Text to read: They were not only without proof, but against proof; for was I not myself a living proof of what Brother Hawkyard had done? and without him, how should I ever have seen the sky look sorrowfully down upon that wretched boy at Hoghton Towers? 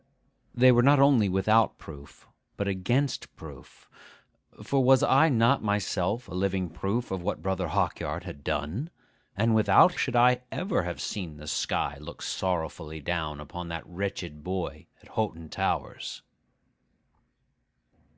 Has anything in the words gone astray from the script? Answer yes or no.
yes